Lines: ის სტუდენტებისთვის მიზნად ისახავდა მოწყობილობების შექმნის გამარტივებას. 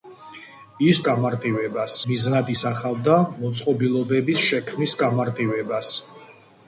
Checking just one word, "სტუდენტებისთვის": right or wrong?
wrong